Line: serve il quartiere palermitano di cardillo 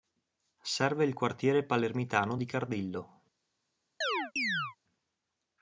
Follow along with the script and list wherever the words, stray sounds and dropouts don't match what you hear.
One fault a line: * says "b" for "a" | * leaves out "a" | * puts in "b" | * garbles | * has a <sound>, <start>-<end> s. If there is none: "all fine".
* has a chirp, 4.0-4.8 s